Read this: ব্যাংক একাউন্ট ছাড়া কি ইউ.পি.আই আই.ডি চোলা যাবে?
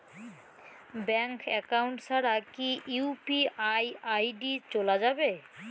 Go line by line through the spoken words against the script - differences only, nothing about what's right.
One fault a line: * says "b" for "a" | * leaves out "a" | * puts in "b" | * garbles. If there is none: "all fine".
all fine